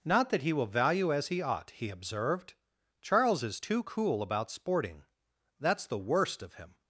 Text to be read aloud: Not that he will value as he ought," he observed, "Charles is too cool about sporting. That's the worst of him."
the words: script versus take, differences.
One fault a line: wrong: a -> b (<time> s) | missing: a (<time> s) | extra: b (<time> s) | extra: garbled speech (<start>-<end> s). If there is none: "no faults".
no faults